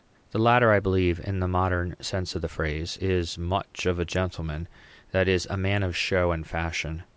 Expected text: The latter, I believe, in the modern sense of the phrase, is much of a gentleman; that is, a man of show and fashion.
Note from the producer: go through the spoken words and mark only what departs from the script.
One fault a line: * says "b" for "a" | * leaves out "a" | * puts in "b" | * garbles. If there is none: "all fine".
all fine